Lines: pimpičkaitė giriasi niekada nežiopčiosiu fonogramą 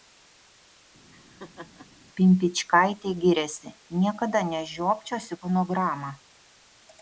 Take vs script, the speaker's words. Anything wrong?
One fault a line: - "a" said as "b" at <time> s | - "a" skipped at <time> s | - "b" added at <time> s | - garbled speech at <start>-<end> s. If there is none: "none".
none